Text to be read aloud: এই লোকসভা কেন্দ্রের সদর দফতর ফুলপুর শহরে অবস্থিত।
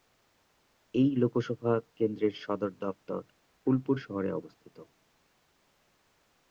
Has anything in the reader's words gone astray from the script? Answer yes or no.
no